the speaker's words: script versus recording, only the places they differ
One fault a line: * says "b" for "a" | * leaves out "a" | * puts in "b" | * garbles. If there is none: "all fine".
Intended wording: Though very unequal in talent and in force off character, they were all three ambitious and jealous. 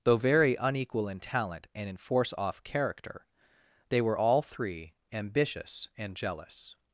all fine